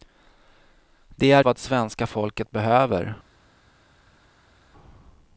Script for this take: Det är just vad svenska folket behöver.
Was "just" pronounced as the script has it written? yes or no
no